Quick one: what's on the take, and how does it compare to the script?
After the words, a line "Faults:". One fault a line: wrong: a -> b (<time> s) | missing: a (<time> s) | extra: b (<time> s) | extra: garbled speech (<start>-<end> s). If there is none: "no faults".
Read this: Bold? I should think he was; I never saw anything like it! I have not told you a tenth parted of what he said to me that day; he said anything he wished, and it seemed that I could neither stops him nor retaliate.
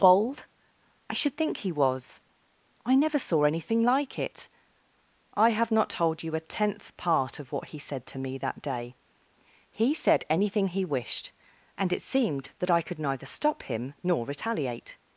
Bold? I should think he was; I never saw anything like it! I have not told you a tenth part of what he said to me that day; he said anything he wished, and it seemed that I could neither stop him nor retaliate.
Faults:
wrong: parted -> part (7.0 s)
wrong: stops -> stop (13.3 s)